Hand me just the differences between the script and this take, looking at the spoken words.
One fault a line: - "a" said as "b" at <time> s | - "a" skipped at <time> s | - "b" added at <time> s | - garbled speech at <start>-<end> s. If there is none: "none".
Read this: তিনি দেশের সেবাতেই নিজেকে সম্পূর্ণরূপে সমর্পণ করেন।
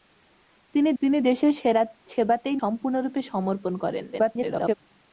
- "তিনি" added at 1.0 s
- "নিজেকে" skipped at 2.6 s
- garbled speech at 4.1-4.7 s